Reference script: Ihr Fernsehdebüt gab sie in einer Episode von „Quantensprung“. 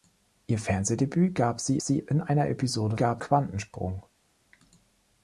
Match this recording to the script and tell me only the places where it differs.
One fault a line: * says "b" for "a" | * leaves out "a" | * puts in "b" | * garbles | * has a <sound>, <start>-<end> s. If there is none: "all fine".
* puts in "sie"
* says "gab" for "von"